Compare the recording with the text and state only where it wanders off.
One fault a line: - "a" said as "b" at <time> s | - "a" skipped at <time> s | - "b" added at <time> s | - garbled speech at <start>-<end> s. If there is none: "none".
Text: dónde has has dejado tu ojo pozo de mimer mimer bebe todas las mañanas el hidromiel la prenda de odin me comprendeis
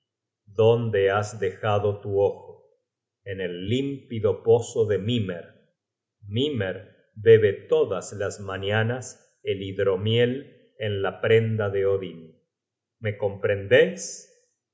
- "has" skipped at 1.4 s
- "en el límpido" added at 3.2 s
- "en" added at 10.8 s